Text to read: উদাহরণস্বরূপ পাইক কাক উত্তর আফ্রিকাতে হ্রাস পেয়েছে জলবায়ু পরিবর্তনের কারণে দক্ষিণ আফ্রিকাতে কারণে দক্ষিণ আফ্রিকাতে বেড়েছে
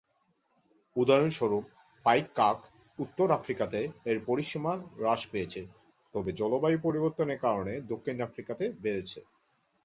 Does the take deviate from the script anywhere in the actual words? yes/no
yes